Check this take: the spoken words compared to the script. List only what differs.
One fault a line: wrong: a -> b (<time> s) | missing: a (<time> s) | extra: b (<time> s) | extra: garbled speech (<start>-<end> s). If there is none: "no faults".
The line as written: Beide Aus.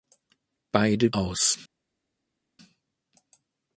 no faults